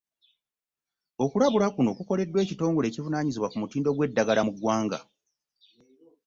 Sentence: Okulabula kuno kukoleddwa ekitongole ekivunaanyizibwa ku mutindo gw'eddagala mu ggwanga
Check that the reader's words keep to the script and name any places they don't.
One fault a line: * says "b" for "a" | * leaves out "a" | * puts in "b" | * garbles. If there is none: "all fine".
all fine